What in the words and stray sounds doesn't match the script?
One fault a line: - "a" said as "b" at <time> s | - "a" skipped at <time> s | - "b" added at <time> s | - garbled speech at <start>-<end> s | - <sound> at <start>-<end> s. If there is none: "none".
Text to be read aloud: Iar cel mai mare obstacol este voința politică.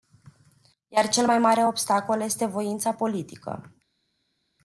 none